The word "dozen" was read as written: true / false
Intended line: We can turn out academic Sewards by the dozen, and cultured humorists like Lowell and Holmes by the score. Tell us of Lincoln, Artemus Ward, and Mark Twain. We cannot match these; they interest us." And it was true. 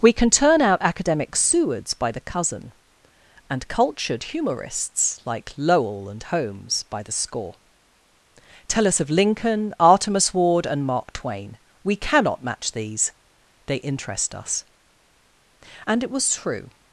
false